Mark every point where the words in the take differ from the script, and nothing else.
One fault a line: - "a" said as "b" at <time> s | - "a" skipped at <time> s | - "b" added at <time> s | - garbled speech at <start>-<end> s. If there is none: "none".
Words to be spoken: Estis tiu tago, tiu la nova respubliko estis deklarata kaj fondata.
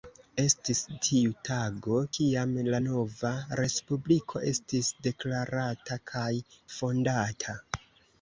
- "tiu" said as "kiam" at 2.2 s